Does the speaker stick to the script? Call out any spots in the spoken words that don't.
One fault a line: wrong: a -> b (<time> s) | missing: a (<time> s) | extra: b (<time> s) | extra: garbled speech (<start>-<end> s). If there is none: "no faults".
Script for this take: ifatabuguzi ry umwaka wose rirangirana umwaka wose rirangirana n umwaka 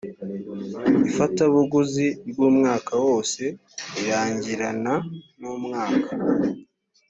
missing: umwaka wose rirangirana (4.9 s)